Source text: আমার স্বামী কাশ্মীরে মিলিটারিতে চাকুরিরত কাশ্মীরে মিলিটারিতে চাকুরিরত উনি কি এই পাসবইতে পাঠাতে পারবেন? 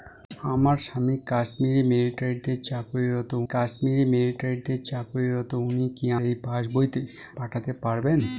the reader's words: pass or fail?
pass